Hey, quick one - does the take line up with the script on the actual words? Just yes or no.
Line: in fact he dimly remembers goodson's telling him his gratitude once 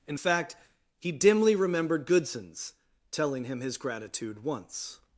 no